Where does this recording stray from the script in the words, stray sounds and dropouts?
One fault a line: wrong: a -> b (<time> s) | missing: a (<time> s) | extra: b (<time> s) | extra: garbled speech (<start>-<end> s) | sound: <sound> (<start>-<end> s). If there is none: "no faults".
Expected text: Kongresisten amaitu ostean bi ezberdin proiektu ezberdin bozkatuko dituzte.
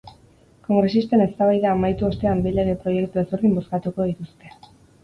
extra: eztabaida (1.3 s)
wrong: ezberdin -> lege (2.6 s)